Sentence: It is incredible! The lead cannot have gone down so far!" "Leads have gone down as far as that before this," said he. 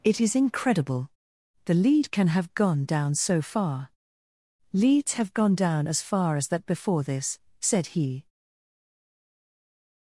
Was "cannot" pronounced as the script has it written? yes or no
no